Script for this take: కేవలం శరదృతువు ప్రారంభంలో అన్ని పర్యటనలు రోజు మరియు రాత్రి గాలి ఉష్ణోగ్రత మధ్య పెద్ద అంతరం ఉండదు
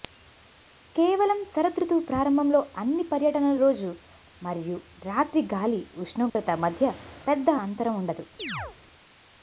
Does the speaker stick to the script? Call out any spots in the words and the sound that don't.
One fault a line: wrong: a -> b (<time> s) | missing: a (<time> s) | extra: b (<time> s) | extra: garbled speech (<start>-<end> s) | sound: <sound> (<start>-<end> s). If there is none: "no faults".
sound: dropout (6.3-6.4 s)
sound: chirp (8.4-8.8 s)